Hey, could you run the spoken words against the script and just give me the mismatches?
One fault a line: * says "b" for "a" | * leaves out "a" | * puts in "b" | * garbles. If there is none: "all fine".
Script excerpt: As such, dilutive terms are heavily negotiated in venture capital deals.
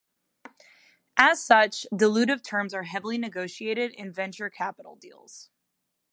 all fine